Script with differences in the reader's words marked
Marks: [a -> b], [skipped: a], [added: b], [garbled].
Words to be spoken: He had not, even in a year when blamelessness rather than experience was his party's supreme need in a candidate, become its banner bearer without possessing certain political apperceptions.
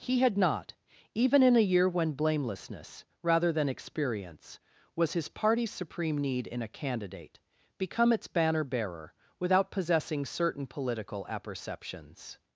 He had not, even in a year when blamelessness rather than experience was his party's supreme need in a candidate, become its banner bearer without possessing certain political apperceptions.